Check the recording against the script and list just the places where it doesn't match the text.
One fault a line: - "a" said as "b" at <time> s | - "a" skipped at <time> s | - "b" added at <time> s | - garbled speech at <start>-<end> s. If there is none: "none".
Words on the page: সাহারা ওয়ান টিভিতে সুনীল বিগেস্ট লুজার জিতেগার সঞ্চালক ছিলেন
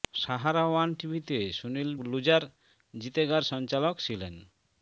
- "বিগেস্ট" skipped at 1.9 s